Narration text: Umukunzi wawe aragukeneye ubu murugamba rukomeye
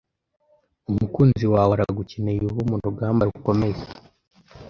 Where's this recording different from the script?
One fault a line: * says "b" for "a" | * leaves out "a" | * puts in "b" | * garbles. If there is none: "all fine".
all fine